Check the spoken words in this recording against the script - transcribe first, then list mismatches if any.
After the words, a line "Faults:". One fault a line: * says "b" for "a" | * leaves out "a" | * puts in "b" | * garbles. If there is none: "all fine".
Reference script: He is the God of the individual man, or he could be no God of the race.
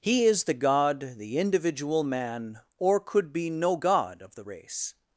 He is the God the individual man, or could be no God of the race.
Faults:
* leaves out "of"
* leaves out "he"